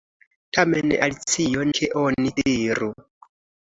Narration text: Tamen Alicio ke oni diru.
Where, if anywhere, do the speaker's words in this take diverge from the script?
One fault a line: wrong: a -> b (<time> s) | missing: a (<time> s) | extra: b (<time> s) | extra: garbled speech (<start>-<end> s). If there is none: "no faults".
no faults